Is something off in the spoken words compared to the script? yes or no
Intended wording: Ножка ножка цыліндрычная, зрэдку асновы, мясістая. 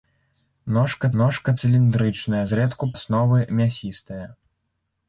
no